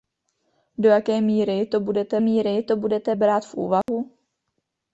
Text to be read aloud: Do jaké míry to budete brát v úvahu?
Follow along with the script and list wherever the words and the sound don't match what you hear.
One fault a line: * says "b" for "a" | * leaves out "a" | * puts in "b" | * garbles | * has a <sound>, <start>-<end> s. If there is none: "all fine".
* puts in "míry to budete"
* has a dropout, 3.8-3.9 s